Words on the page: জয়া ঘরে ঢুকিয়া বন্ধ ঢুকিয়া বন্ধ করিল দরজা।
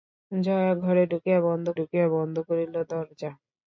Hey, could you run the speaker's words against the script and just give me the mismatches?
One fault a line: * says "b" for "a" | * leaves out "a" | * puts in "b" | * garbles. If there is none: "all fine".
all fine